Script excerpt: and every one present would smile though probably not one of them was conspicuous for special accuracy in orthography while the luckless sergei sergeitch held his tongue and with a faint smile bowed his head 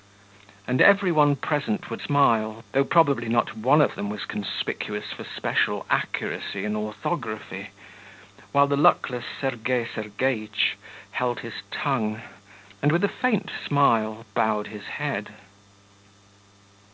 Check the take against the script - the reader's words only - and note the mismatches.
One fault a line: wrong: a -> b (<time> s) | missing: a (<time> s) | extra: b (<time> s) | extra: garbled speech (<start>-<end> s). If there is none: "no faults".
no faults